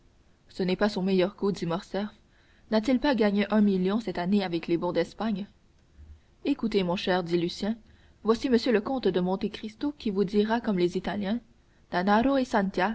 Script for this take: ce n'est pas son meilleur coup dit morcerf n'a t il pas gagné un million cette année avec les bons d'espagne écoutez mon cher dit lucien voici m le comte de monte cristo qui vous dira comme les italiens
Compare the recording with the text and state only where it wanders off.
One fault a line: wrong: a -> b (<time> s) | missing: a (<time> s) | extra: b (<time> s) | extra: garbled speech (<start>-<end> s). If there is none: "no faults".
no faults